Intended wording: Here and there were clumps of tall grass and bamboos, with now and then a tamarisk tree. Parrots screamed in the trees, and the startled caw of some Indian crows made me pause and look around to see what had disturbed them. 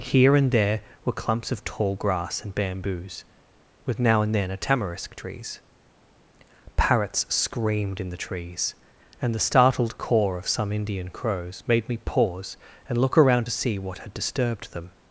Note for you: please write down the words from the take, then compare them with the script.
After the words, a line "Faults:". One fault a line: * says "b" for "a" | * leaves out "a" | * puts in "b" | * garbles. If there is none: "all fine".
Here and there were clumps of tall grass and bamboos, with now and then a tamarisk trees. Parrots screamed in the trees, and the startled caw of some Indian crows made me pause and look around to see what had disturbed them.
Faults:
* says "trees" for "tree"